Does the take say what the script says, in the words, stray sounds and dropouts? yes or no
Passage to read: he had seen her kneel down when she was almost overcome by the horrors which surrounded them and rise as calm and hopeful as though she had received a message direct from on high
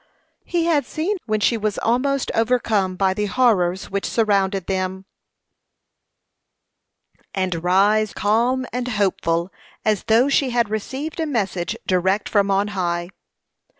no